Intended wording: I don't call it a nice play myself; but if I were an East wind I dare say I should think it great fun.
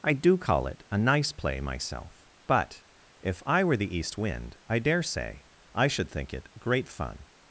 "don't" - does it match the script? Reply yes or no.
no